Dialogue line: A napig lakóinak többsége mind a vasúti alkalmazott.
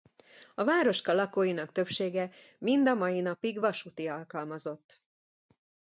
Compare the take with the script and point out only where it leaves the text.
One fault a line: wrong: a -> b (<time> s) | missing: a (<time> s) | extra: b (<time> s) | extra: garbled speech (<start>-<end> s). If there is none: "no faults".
wrong: napig -> városka (0.6 s)
extra: mai napig (2.9 s)